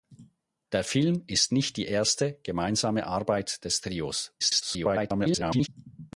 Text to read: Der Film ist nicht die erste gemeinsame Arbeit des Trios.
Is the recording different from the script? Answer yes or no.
yes